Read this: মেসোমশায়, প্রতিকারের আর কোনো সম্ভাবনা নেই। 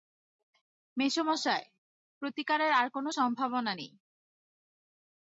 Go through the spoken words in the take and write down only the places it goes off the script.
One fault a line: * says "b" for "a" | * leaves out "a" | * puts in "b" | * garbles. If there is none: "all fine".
all fine